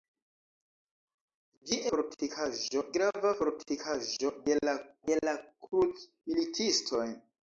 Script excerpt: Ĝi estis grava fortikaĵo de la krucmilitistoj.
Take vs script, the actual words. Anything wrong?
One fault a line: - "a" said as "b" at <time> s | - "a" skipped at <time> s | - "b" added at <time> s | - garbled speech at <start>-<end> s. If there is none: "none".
- "estis" said as "fortikaĵo" at 2.0 s
- "de la" added at 5.1 s